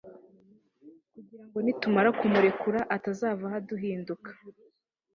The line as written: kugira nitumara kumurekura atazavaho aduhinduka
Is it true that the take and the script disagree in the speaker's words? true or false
true